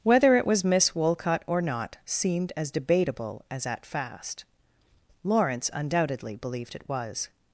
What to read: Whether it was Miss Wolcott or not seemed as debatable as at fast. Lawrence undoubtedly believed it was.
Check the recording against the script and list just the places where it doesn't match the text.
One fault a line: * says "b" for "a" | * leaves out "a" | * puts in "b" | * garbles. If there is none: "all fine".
all fine